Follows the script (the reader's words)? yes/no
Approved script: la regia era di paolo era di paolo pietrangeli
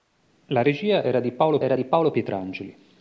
yes